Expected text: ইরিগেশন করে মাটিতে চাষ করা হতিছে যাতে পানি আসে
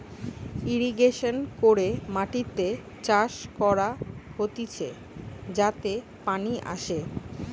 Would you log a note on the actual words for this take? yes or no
no